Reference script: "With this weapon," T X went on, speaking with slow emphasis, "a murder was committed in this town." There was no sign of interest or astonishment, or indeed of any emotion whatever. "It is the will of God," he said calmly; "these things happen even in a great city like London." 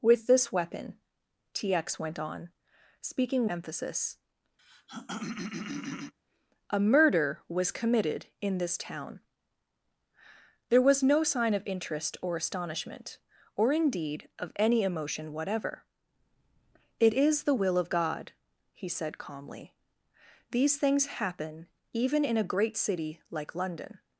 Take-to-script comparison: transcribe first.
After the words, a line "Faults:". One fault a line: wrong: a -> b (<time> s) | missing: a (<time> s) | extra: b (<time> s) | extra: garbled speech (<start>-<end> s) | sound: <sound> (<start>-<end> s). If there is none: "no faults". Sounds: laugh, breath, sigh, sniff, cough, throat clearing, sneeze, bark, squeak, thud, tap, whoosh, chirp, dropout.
"With this weapon," T X went on, speaking emphasis, "a murder was committed in this town." There was no sign of interest or astonishment, or indeed of any emotion whatever. "It is the will of God," he said calmly; "these things happen even in a great city like London."
Faults:
missing: with slow (3.5 s)
sound: throat clearing (4.6-6.1 s)